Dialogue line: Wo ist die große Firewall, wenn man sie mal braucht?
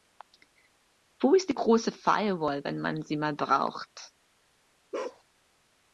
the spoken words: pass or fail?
pass